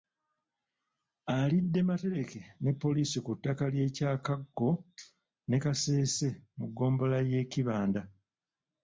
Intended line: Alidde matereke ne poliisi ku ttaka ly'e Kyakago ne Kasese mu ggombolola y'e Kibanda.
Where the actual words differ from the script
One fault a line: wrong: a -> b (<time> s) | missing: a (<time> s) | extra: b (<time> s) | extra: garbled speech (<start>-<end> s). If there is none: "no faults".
no faults